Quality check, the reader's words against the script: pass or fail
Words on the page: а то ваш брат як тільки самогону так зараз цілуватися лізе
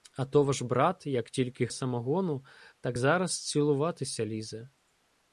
pass